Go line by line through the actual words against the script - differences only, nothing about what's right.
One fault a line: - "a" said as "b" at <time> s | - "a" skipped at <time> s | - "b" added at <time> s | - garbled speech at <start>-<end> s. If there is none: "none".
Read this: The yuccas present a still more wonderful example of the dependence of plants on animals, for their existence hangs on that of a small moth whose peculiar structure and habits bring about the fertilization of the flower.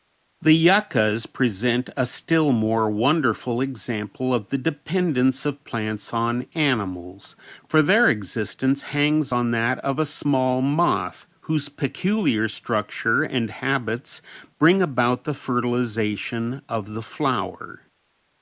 none